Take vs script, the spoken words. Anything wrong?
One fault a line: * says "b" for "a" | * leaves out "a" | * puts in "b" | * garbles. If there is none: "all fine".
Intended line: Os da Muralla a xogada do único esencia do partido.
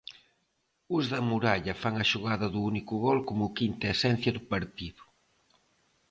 * puts in "fan"
* puts in "gol como quinta"